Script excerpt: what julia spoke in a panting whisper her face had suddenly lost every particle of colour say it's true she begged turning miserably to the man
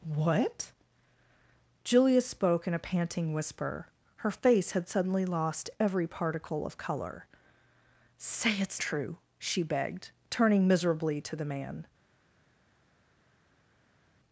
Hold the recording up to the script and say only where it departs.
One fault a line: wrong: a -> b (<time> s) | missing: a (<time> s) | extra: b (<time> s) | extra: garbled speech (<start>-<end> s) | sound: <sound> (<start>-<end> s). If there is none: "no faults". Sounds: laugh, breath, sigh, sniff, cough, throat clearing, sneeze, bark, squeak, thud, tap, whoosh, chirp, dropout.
no faults